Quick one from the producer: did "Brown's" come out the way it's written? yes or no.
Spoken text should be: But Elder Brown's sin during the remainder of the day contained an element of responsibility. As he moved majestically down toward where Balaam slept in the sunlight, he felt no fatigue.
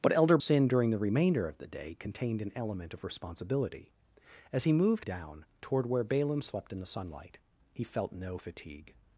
no